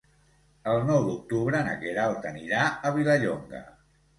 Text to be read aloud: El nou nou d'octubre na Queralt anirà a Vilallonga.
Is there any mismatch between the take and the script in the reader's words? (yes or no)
yes